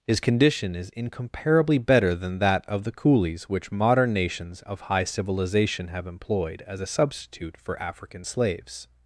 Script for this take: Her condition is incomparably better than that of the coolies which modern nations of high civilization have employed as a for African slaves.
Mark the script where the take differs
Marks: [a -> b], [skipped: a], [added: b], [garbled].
[Her -> His] condition is incomparably better than that of the coolies which modern nations of high civilization have employed as a [added: substitute] for African slaves.